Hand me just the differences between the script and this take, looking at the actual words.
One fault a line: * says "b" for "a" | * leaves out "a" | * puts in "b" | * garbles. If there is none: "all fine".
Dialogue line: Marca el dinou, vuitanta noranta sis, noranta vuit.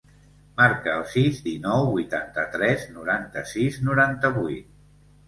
* puts in "sis"
* puts in "tres"